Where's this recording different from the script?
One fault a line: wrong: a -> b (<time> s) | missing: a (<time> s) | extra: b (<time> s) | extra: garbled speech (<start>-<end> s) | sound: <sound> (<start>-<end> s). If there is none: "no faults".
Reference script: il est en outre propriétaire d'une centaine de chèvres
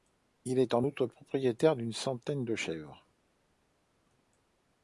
no faults